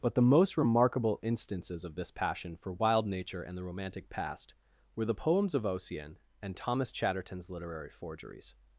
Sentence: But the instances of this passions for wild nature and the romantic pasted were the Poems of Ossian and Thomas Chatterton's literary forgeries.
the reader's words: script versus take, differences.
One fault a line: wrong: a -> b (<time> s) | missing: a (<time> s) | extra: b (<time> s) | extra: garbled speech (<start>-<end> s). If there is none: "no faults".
extra: most remarkable (0.2 s)
wrong: passions -> passion (2.1 s)
wrong: pasted -> past (4.1 s)